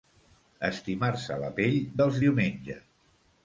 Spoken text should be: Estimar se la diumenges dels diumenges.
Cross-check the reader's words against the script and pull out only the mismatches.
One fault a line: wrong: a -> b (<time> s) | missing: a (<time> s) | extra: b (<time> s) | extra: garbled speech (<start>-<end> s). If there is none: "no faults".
wrong: diumenges -> pell (1.6 s)